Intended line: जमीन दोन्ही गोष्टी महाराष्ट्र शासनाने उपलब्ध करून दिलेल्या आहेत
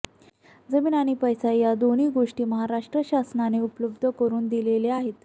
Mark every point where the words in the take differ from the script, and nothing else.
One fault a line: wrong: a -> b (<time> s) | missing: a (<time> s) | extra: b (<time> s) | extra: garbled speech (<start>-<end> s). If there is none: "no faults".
extra: आणि पैसा या (0.9 s)